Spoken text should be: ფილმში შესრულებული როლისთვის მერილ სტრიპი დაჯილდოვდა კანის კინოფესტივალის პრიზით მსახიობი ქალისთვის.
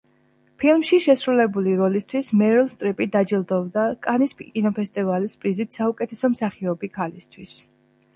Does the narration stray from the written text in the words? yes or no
yes